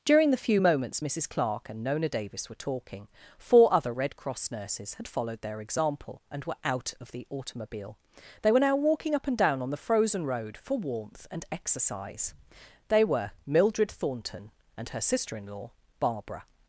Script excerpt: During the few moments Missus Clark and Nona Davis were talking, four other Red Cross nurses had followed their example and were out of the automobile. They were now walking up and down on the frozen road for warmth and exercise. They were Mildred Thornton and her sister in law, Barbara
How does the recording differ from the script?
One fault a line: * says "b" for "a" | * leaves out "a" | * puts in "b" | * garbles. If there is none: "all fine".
all fine